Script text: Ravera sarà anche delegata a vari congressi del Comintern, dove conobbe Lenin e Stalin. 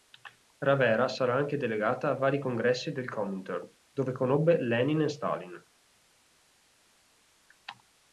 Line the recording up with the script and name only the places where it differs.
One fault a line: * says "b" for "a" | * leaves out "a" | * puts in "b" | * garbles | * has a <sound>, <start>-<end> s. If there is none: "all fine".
all fine